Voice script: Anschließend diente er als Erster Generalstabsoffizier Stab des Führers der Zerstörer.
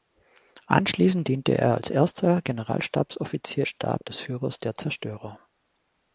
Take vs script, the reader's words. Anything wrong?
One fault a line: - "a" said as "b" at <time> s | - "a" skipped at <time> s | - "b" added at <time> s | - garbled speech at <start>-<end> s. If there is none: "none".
none